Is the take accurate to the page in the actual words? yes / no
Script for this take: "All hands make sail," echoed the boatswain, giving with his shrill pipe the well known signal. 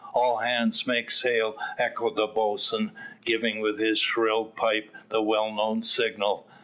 yes